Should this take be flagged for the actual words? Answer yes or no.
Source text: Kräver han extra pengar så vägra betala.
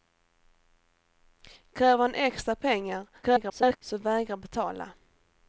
yes